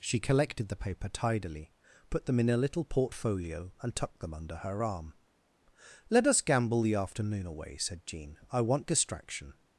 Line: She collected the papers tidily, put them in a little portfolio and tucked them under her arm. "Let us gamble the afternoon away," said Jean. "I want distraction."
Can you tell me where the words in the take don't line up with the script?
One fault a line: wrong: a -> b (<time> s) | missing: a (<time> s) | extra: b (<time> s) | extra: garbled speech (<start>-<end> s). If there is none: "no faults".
wrong: papers -> paper (0.8 s)